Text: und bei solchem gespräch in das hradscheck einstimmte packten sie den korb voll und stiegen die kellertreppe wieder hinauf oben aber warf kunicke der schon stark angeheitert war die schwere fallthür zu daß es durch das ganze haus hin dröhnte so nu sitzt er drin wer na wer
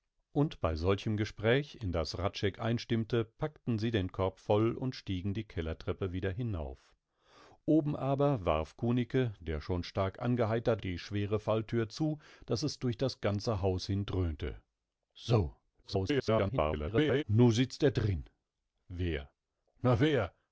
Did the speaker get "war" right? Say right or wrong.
wrong